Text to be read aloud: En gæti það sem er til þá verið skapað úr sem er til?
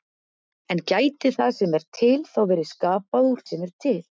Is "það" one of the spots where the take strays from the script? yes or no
no